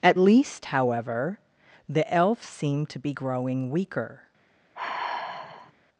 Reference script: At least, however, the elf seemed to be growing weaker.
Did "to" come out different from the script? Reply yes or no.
no